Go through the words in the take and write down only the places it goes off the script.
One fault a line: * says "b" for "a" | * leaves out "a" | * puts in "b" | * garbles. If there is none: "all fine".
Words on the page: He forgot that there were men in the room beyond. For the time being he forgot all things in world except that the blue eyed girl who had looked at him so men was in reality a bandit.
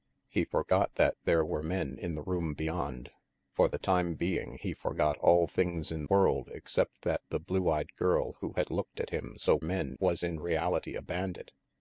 all fine